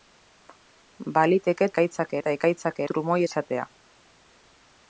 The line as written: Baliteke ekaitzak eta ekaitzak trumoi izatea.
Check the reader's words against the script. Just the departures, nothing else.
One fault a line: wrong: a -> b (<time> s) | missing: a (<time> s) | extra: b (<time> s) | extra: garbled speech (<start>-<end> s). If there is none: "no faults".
no faults